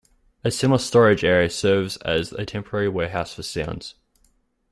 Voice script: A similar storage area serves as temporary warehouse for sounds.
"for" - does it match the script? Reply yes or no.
yes